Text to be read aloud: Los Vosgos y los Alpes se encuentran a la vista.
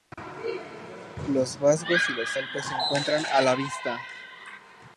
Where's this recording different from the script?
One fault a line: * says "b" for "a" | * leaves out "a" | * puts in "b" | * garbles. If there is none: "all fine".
all fine